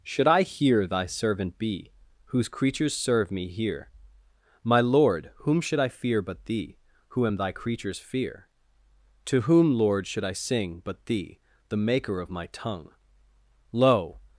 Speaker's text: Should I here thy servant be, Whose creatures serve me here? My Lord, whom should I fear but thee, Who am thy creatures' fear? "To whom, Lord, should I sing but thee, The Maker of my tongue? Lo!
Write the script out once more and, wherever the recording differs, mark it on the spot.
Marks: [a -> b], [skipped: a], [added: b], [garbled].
Should I here thy servant be, Whose creatures serve me here? My Lord, whom should I fear but thee, Who am thy creatures' fear? "To whom, Lord, should I sing but thee, The Maker of my tongue? Lo!